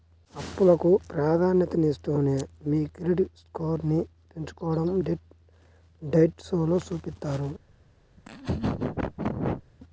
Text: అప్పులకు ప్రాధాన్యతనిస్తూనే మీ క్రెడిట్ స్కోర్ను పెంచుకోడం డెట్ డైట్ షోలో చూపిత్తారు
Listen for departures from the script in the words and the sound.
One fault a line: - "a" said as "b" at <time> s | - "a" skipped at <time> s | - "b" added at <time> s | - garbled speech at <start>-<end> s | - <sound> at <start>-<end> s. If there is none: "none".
- laugh at 8.2-9.6 s